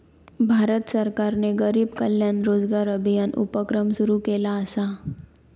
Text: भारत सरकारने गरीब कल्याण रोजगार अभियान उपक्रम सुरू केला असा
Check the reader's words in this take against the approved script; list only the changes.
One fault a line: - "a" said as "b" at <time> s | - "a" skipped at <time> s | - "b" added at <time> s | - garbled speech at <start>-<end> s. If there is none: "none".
none